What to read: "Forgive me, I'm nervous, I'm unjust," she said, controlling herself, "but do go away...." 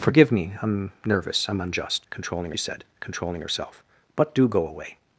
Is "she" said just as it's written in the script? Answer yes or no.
no